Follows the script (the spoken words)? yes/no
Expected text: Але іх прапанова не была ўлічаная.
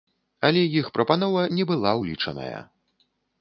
yes